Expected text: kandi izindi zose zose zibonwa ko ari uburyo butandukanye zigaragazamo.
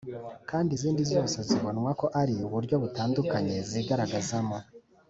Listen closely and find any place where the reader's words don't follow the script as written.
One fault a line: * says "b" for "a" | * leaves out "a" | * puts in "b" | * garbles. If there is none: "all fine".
* leaves out "zose"